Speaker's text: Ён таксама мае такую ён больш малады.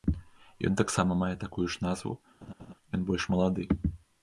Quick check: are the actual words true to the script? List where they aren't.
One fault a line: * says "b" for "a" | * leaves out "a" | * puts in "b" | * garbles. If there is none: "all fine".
* puts in "ж назву"